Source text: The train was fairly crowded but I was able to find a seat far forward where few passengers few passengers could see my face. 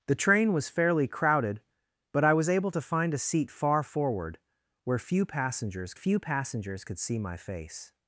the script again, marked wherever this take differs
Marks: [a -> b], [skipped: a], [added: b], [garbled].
The train was fairly crowded but I was able to find a seat far forward where few passengers few passengers could see my face.